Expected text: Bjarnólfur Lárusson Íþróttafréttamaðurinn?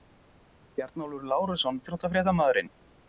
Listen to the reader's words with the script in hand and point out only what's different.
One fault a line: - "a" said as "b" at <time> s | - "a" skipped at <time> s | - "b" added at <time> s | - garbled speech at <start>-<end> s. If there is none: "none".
none